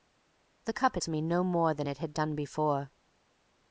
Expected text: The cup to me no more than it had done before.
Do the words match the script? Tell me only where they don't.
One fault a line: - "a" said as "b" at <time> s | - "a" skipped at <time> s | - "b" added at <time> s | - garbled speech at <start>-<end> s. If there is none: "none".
none